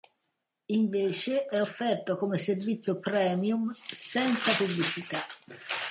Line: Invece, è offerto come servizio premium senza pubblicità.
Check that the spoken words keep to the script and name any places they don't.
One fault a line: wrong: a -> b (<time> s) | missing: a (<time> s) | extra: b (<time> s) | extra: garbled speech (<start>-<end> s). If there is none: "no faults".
no faults